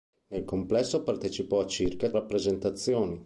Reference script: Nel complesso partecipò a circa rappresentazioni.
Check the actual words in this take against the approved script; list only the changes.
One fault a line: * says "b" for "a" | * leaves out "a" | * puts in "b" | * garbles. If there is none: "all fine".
all fine